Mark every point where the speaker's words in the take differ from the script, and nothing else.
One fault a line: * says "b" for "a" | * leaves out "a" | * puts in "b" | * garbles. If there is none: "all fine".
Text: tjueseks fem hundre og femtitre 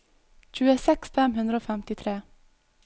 all fine